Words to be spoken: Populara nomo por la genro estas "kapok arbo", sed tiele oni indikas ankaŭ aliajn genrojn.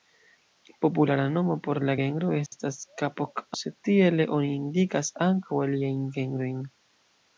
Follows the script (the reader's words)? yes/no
no